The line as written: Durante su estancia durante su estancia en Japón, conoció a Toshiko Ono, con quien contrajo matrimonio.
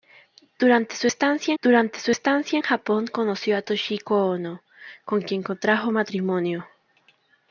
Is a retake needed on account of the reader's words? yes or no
no